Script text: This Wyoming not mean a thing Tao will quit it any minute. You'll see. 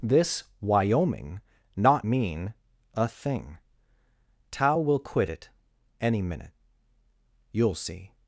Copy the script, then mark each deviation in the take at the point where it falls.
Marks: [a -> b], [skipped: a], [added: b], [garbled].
This Wyoming not mean a thing Tao will quit it any minute. You'll see.